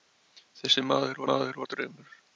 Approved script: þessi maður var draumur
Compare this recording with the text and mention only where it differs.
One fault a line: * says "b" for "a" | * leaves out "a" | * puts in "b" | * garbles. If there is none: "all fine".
* puts in "maður"